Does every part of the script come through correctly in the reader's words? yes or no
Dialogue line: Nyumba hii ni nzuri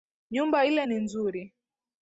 no